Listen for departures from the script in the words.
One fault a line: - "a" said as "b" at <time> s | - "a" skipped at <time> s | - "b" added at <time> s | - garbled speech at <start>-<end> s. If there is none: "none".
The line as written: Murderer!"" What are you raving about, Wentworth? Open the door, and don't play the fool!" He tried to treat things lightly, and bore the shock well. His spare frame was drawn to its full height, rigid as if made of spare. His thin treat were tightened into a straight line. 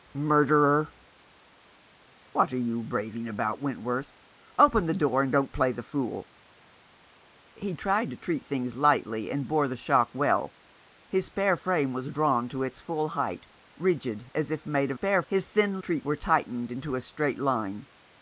none